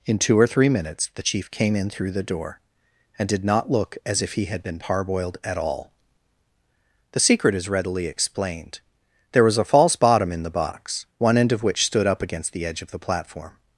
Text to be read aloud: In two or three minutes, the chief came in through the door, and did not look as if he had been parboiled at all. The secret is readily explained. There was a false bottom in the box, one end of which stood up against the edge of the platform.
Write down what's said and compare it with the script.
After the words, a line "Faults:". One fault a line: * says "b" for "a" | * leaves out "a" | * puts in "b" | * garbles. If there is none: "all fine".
In two or three minutes, the chief came in through the door, and did not look as if he had been parboiled at all. The secret is readily explained. There was a false bottom in the box, one end of which stood up against the edge of the platform.
Faults:
all fine